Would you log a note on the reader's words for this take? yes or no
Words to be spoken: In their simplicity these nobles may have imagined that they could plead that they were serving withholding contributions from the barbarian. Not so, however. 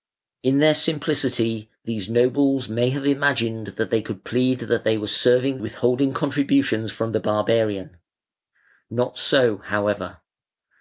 no